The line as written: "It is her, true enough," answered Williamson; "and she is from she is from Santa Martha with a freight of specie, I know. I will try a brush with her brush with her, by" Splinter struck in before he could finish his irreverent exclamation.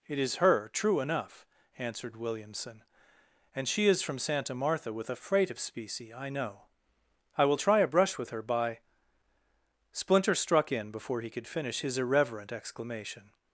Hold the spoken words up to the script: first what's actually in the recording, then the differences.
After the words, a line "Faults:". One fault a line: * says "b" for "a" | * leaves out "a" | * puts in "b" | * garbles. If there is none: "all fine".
"It is her, true enough," answered Williamson; "and she is from Santa Martha with a freight of specie, I know. I will try a brush with her, by" Splinter struck in before he could finish his irreverent exclamation.
Faults:
* leaves out "she is from"
* leaves out "brush with her"